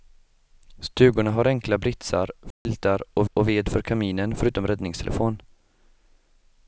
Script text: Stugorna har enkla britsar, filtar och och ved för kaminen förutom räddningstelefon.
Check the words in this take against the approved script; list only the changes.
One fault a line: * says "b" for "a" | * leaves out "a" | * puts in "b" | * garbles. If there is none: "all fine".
all fine